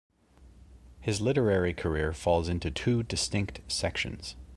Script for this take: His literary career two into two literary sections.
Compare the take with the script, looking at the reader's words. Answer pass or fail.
fail